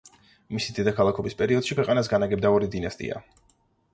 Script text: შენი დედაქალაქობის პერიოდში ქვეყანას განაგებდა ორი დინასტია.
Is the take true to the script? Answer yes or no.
no